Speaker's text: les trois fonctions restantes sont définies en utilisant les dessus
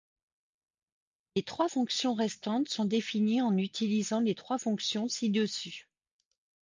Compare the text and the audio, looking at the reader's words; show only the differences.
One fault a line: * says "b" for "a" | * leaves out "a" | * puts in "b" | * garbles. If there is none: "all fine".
* puts in "trois fonctions ci"